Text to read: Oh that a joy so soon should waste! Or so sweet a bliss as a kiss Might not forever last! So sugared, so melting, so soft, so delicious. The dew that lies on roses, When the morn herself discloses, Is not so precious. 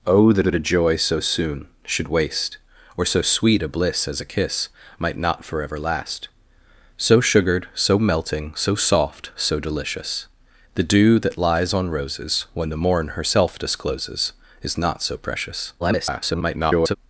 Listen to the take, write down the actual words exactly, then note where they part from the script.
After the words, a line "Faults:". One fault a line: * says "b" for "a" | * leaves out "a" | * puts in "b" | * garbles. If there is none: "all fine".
Oh that that a joy so soon should waste! Or so sweet a bliss as a kiss Might not forever last! So sugared, so melting, so soft, so delicious. The dew that lies on roses, When the morn herself discloses, Is not so precious. [garbled]
Faults:
* puts in "that"
* garbles